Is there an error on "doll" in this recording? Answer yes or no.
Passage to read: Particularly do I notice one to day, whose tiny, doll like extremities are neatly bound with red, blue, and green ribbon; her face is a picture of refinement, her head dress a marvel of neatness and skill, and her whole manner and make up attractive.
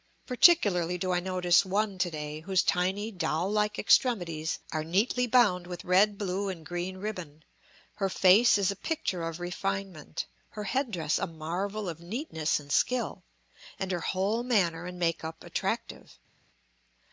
no